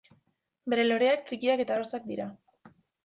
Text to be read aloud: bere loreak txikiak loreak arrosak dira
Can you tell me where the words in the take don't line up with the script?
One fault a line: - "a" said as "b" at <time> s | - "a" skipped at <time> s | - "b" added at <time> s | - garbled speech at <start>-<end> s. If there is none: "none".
- "loreak" said as "eta" at 1.6 s